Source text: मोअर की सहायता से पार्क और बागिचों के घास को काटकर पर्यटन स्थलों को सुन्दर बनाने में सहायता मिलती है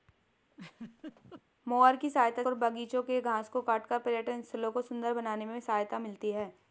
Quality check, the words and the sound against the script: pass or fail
fail